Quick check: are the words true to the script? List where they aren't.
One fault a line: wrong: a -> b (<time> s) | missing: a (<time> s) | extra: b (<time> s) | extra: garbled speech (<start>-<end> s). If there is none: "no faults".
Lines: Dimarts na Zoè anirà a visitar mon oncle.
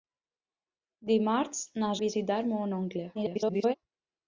missing: Zoè anirà (1.9 s)
extra: garbled speech (3.1-3.7 s)